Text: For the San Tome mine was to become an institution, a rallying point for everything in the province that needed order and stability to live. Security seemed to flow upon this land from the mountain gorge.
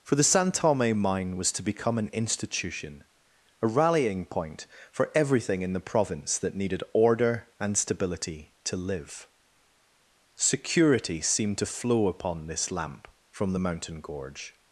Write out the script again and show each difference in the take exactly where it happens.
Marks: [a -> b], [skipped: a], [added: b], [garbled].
For the San Tome mine was to become an institution, a rallying point for everything in the province that needed order and stability to live. Security seemed to flow upon this [land -> lamp] from the mountain gorge.